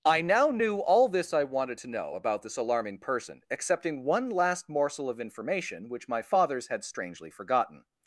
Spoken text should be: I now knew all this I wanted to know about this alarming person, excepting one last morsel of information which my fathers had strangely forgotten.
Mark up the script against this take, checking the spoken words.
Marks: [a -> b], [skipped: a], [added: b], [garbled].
I now knew all this I wanted to know about this alarming person, excepting one last morsel of information which my fathers had strangely forgotten.